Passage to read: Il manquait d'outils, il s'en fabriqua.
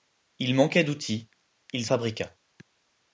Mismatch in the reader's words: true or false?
true